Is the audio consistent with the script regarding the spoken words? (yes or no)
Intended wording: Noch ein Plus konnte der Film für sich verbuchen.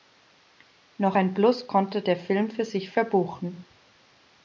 yes